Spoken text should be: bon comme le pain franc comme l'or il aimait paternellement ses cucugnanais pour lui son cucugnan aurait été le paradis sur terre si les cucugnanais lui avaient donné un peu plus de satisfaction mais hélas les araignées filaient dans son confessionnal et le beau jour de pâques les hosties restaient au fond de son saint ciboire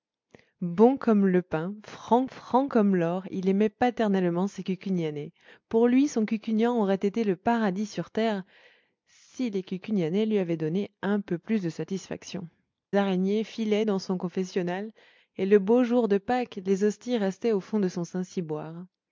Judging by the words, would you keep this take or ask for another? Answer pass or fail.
fail